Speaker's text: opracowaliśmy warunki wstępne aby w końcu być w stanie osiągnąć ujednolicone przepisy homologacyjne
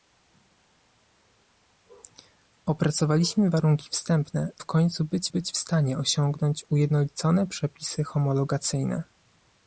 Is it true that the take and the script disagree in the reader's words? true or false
true